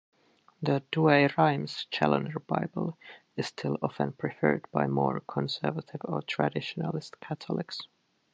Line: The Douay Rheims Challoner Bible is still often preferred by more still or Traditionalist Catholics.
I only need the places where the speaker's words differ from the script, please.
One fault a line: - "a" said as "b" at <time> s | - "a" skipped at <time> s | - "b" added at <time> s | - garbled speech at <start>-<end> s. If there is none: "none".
- "still" said as "conservative" at 5.2 s